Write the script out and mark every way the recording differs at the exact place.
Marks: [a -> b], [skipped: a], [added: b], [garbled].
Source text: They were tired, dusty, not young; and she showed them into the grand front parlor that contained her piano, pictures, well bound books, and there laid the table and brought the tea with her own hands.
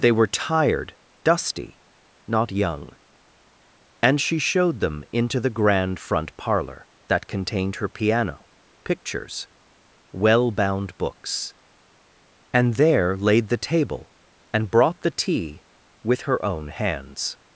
They were tired, dusty, not young; and she showed them into the grand front parlor that contained her piano, pictures, well bound books, and there laid the table and brought the tea with her own hands.